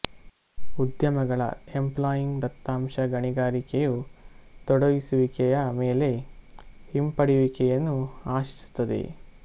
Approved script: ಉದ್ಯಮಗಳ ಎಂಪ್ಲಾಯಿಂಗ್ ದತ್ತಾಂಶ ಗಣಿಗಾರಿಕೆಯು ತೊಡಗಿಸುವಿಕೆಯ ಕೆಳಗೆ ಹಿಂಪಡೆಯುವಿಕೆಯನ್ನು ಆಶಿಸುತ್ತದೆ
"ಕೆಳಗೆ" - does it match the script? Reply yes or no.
no